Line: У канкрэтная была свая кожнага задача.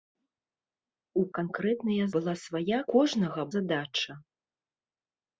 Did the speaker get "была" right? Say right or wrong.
right